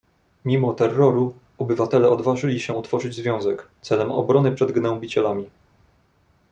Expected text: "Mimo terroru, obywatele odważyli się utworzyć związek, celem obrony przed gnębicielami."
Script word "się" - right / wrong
right